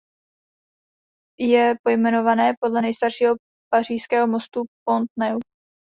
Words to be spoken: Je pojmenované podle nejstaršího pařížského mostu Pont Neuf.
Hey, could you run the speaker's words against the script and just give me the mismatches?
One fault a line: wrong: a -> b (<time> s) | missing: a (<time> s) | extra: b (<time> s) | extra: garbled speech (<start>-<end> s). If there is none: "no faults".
no faults